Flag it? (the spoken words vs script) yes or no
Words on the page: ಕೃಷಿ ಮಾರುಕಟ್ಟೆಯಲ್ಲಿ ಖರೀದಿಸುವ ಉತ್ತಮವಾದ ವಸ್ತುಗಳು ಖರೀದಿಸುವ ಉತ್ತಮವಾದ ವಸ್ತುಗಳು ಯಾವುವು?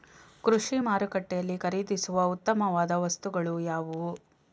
yes